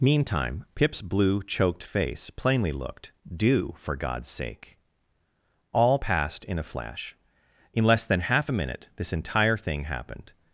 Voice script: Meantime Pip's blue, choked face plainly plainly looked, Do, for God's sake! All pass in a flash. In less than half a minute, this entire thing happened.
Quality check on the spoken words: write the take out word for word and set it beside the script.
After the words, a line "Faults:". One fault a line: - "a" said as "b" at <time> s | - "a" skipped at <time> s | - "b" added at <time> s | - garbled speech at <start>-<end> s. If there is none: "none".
Meantime Pip's blue, choked face plainly looked, Do, for God's sake! All passed in a flash. In less than half a minute, this entire thing happened.
Faults:
- "plainly" skipped at 2.7 s
- "pass" said as "passed" at 6.0 s